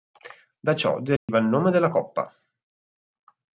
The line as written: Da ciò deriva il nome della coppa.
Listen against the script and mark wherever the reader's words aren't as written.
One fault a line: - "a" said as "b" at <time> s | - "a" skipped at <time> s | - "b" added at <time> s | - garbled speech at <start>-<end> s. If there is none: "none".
none